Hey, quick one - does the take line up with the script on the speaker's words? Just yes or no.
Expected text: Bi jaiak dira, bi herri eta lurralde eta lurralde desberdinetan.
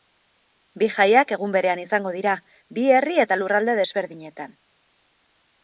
no